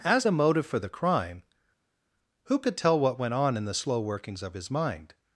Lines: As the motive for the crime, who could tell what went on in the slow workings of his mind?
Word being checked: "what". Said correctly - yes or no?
yes